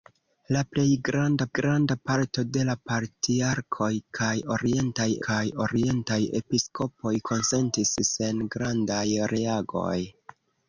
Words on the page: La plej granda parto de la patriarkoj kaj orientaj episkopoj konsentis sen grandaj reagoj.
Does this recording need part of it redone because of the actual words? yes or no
yes